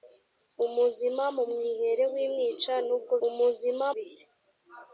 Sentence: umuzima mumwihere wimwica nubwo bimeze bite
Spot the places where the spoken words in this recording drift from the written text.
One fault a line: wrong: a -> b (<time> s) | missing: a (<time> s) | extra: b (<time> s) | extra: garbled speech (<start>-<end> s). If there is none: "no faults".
wrong: bimeze -> umuzima (3.3 s)